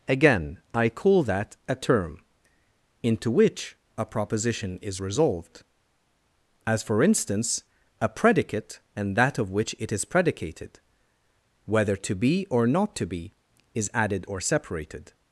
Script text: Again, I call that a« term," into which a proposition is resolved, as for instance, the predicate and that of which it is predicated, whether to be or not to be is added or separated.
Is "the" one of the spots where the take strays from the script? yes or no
yes